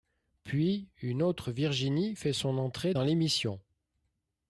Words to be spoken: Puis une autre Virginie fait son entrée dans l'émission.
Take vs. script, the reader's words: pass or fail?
pass